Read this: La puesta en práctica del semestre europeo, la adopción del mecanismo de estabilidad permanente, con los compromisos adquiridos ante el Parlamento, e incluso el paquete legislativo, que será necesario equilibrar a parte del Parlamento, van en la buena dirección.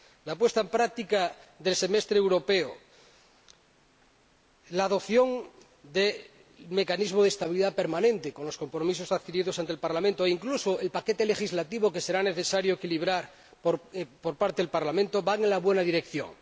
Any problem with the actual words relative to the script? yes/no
yes